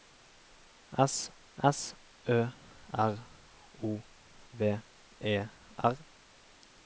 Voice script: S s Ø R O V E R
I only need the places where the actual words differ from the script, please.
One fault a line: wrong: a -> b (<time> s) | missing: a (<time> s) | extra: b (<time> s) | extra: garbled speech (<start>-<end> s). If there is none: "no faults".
no faults